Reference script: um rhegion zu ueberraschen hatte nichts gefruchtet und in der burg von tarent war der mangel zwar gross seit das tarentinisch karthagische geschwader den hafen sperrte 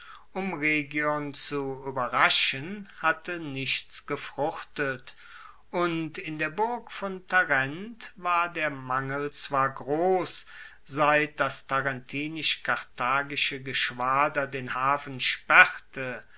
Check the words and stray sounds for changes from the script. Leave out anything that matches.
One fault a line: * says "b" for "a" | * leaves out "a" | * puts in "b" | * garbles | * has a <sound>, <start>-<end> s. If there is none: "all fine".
all fine